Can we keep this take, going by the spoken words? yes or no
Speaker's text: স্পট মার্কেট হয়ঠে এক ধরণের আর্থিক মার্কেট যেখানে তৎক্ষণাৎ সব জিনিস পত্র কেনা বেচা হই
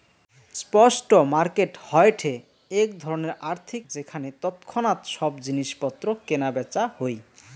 no